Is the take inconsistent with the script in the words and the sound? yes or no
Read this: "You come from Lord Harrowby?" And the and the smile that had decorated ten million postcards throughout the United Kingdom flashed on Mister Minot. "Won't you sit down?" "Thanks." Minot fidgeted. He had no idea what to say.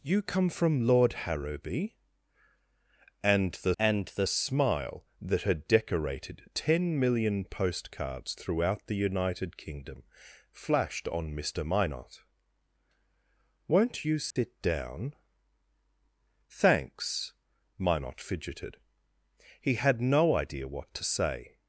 yes